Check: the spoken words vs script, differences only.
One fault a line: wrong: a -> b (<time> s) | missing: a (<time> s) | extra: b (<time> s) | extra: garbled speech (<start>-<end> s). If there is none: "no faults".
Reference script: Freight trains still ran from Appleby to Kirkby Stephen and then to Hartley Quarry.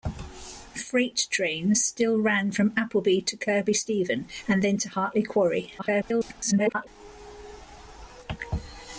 extra: garbled speech (5.8-6.9 s)